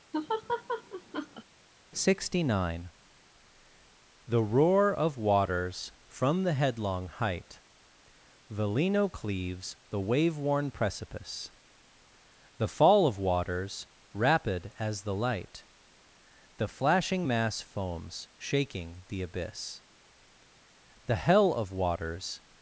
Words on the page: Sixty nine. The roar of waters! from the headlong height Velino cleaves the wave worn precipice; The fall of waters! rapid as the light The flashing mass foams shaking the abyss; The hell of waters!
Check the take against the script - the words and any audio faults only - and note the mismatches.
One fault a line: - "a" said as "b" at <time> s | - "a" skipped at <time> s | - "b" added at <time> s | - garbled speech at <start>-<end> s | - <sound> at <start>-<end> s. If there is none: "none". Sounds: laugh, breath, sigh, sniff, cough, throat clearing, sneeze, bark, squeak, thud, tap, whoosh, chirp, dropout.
- laugh at 0.1-1.4 s